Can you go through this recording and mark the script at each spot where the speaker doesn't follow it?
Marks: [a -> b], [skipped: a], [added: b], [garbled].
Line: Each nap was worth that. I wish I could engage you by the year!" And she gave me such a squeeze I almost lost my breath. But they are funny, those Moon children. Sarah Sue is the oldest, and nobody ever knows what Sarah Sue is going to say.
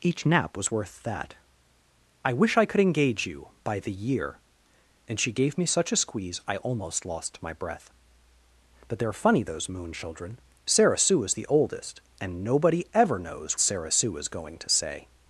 Each nap was worth that. I wish I could engage you by the year!" And she gave me such a squeeze I almost lost my breath. But they are funny, those Moon children. Sarah Sue is the oldest, and nobody ever knows [skipped: what] Sarah Sue is going to say.